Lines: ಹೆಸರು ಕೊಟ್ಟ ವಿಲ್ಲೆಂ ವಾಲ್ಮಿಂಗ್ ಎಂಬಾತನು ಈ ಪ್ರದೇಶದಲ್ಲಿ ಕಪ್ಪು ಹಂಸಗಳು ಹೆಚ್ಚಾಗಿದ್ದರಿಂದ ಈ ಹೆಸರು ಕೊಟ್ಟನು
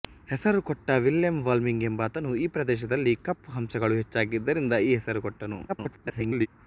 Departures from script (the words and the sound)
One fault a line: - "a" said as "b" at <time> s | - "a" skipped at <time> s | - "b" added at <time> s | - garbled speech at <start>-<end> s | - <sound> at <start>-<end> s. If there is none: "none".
- garbled speech at 5.7-6.5 s